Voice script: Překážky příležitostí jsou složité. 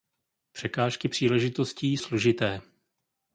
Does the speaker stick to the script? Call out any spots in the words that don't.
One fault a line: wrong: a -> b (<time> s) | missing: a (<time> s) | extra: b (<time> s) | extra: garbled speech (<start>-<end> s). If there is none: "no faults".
missing: jsou (2.0 s)